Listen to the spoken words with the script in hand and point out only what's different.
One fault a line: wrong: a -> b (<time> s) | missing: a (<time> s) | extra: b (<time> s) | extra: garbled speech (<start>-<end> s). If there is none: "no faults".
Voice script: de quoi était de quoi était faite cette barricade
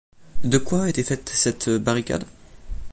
missing: de quoi était (1.0 s)